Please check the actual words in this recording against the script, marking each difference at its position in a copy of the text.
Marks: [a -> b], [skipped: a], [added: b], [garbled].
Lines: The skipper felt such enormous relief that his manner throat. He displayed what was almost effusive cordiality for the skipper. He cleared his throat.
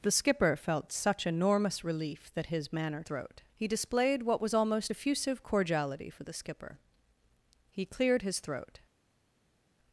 The skipper felt such enormous relief that his manner throat. He displayed what was almost effusive cordiality for the skipper. He cleared his throat.